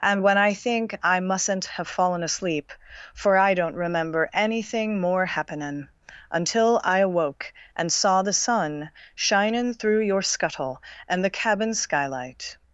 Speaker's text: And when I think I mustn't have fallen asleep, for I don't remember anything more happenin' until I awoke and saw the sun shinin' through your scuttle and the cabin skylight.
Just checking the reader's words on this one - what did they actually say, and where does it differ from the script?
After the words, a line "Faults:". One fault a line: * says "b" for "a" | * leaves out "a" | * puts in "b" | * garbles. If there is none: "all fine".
And when I think I mustn't have fallen asleep, for I don't remember anything more happenin' until I awoke and saw the sun shinin' through your scuttle and the cabin skylight.
Faults:
all fine